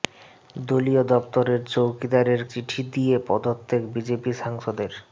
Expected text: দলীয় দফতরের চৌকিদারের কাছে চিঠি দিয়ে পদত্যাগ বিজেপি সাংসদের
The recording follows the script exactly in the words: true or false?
false